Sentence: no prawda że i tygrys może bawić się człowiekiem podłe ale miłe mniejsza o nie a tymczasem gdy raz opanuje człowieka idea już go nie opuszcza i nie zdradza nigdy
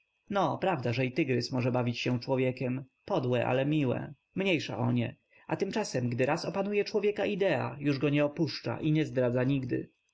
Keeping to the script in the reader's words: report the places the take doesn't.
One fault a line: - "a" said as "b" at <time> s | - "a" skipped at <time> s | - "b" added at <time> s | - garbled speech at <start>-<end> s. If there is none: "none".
none